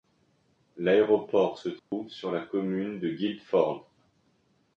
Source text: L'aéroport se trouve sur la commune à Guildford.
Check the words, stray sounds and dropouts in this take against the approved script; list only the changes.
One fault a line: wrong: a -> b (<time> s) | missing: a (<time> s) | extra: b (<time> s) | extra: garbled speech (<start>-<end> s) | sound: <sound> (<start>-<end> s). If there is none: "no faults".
sound: dropout (1.8-1.9 s)
wrong: à -> de (3.0 s)